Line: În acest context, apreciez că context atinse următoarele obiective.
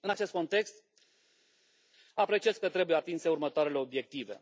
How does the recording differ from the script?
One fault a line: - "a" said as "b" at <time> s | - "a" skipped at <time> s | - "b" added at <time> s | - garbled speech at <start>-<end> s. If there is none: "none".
- "context" said as "trebuie" at 2.7 s